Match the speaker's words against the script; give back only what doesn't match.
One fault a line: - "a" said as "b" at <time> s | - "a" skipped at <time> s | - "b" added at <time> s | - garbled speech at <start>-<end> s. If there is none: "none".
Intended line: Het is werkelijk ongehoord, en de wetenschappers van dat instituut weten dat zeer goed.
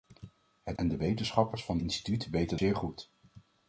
- "is werkelijk ongehoord" skipped at 0.8 s
- "dat" skipped at 1.8 s
- "dat" skipped at 2.6 s